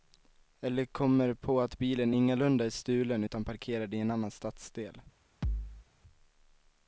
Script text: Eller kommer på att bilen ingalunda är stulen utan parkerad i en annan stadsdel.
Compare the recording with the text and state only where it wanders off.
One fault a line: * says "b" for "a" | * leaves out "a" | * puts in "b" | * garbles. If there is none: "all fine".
all fine